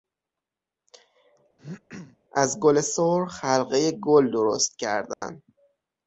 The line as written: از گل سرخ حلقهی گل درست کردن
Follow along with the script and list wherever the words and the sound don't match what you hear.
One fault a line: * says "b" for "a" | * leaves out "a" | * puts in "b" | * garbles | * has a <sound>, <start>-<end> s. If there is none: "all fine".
* has a throat clearing, 1.6-2.2 s
* has a dropout, 5.1-5.2 s